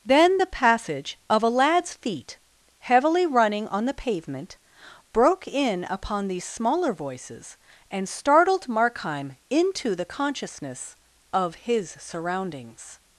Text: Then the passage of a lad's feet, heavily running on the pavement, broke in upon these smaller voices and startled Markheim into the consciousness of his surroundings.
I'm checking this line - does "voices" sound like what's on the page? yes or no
yes